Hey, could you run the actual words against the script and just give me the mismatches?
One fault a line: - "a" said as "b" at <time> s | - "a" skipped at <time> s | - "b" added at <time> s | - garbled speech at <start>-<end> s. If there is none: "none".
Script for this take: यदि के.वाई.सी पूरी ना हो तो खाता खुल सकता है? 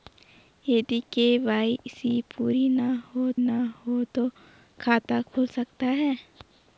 - "ना हो" added at 3.4 s